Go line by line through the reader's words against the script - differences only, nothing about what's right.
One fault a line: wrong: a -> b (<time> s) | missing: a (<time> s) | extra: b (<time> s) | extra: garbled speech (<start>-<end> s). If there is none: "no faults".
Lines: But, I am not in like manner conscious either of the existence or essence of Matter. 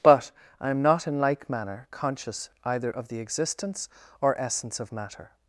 no faults